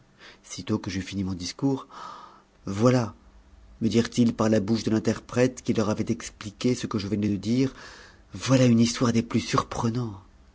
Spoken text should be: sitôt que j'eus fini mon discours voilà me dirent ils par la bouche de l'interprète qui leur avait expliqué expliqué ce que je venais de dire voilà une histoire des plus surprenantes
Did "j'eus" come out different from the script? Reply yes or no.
no